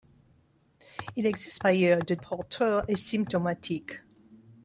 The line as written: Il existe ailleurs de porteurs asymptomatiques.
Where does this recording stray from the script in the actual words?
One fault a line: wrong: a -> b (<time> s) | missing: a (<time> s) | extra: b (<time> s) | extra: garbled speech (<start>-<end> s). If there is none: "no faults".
no faults